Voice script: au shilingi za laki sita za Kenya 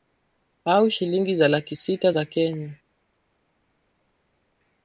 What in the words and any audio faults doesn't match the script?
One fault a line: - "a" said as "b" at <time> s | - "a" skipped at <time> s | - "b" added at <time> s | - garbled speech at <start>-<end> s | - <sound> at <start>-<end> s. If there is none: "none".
none